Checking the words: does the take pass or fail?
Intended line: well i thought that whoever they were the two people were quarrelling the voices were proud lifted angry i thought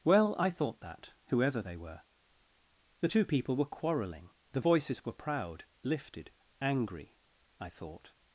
pass